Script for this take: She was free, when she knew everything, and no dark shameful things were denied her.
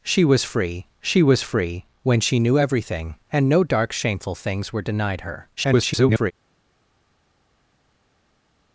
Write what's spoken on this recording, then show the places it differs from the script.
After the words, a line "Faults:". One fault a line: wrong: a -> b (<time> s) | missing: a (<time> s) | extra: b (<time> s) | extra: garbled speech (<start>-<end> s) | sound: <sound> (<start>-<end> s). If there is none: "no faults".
She was free she was free, when she knew everything, and no dark shameful things were denied her. [garbled]
Faults:
extra: she was free (1.0 s)
extra: garbled speech (5.6-6.3 s)